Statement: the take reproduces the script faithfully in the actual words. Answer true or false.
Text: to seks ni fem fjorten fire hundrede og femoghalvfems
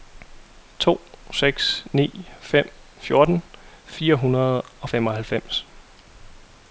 true